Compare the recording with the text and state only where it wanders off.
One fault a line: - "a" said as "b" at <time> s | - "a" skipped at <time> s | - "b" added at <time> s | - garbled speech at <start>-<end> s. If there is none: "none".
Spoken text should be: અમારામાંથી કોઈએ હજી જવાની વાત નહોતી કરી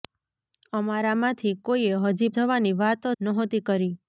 none